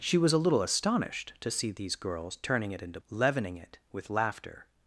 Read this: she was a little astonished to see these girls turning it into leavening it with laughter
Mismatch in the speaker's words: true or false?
false